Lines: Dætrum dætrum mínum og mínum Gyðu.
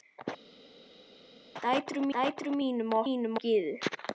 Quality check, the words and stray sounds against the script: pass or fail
pass